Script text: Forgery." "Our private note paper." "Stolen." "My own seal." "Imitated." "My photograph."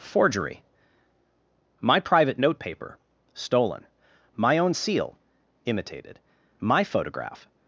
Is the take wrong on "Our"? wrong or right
wrong